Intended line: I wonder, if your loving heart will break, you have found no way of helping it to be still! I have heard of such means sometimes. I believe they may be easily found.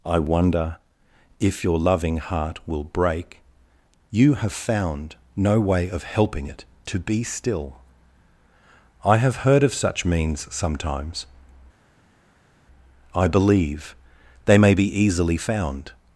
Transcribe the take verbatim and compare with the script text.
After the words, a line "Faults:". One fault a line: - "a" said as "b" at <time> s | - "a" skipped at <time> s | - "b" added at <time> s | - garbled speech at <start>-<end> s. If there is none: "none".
I wonder, if your loving heart will break, you have found no way of helping it to be still! I have heard of such means sometimes. I believe they may be easily found.
Faults:
none